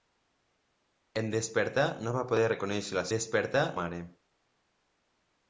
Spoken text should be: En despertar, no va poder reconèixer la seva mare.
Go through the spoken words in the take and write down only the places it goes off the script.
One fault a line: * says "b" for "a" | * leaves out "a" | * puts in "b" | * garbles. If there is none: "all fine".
* says "despertar" for "seva"